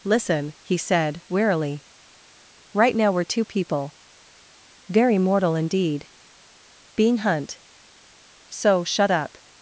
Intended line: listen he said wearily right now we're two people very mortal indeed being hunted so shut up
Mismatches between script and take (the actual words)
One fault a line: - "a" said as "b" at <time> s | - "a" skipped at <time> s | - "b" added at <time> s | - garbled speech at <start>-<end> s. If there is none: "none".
- "hunted" said as "hunt" at 7.2 s